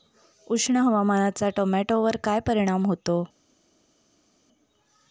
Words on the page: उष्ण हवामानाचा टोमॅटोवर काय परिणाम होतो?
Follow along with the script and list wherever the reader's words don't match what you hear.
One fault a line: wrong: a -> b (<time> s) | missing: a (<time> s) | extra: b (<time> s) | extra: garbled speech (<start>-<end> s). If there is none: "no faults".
no faults